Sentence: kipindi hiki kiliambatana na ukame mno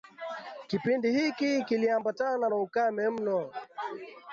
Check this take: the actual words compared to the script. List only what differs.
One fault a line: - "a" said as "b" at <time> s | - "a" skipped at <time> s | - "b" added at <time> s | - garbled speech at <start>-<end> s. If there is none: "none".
none